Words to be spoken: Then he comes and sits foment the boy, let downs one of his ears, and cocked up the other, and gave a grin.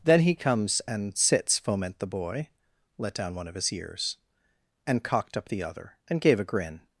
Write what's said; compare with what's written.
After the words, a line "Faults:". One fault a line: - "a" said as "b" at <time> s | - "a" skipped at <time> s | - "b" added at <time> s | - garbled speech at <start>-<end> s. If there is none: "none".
Then he comes and sits foment the boy, let down one of his ears, and cocked up the other, and gave a grin.
Faults:
- "downs" said as "down" at 3.1 s